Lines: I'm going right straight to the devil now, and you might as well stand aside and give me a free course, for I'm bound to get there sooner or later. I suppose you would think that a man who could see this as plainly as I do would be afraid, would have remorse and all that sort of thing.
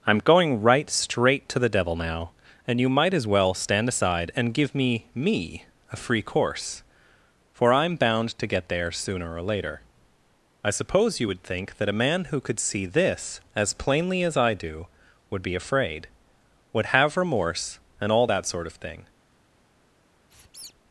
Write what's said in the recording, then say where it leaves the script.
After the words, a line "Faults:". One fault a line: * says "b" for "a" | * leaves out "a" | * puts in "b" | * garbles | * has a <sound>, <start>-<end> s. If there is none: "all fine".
I'm going right straight to the devil now, and you might as well stand aside and give me me a free course, for I'm bound to get there sooner or later. I suppose you would think that a man who could see this as plainly as I do would be afraid, would have remorse and all that sort of thing.
Faults:
* puts in "me"
* has a squeak, 20.3-20.7 s